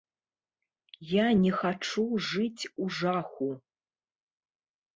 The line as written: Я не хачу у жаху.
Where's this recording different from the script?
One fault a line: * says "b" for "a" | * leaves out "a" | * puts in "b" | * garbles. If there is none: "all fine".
* puts in "жыць"